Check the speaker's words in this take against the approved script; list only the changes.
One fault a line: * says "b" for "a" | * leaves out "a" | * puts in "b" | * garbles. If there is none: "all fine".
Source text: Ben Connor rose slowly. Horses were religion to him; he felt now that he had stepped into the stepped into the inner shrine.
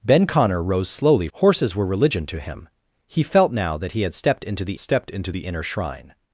all fine